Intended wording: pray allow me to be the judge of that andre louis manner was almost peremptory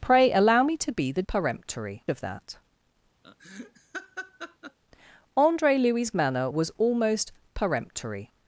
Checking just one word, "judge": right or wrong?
wrong